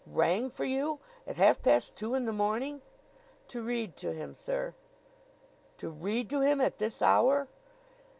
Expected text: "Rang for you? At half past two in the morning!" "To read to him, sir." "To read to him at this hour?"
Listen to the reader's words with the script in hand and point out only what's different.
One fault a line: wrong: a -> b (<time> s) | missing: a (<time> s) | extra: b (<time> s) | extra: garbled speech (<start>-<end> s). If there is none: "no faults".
no faults